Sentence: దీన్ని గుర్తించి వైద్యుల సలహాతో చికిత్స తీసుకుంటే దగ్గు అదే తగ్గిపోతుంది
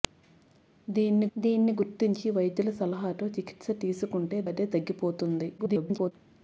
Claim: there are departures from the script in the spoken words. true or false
true